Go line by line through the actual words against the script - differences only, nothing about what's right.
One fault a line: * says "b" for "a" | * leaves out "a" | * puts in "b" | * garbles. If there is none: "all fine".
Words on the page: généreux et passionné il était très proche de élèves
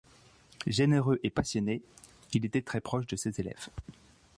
* puts in "ses"